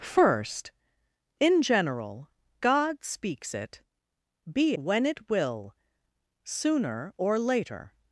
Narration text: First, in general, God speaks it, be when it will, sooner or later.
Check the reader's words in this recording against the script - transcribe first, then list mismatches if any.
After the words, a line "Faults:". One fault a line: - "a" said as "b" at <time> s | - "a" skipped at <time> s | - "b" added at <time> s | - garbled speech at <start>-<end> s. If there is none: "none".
First, in general, God speaks it, be when it will, sooner or later.
Faults:
none